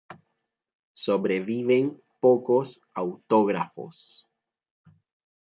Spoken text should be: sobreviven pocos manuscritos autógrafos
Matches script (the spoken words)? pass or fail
fail